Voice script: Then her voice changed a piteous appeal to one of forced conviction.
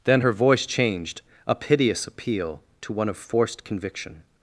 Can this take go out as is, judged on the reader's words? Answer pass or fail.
pass